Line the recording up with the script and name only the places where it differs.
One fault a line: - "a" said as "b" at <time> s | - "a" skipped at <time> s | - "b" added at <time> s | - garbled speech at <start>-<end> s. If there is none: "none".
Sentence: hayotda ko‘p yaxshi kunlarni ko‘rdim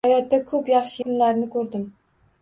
none